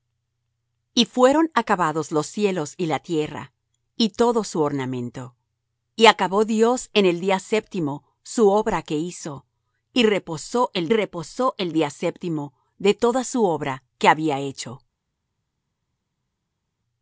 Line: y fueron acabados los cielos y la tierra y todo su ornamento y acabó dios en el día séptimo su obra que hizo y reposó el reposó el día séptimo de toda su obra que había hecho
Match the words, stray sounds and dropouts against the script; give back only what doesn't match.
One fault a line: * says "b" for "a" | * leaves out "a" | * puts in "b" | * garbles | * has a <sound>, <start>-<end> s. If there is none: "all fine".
all fine